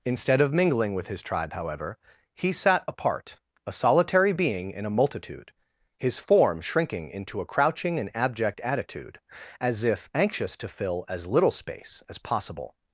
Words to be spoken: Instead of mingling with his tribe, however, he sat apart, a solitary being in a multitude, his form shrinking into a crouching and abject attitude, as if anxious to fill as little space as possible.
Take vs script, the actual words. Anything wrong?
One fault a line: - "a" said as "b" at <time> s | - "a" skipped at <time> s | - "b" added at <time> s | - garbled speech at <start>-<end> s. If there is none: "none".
none